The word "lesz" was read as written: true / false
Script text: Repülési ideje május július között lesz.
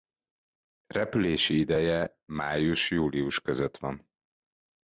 false